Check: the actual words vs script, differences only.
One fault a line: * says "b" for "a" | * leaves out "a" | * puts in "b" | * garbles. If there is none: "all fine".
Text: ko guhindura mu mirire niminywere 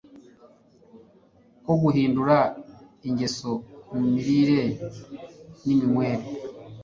* puts in "ingeso"